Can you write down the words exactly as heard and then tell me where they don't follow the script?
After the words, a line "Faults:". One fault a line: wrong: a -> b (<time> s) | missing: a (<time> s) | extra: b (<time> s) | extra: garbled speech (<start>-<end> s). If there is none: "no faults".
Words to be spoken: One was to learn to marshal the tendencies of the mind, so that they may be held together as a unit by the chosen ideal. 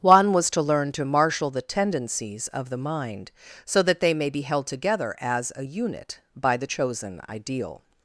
One was to learn to marshal the tendencies of the mind, so that they may be held together as a unit by the chosen ideal.
Faults:
no faults